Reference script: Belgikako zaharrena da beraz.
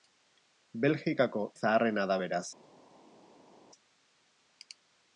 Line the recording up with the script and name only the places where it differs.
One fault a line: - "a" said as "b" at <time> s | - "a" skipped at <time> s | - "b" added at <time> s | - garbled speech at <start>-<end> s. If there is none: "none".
none